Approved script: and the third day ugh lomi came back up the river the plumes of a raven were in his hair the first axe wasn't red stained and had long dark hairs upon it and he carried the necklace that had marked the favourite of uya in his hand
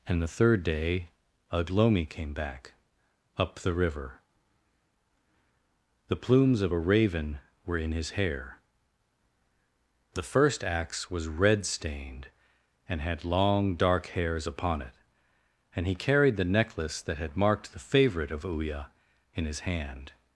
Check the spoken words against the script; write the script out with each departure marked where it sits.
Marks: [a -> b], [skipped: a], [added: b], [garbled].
and the third day ugh lomi came back up the river the plumes of a raven were in his hair the first axe [wasn't -> was] red stained and had long dark hairs upon it and he carried the necklace that had marked the favourite of uya in his hand